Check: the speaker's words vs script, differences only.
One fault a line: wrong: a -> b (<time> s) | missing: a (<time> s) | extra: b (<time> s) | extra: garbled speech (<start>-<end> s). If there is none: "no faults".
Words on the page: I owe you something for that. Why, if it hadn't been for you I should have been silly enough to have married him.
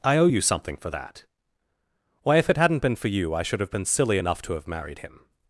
no faults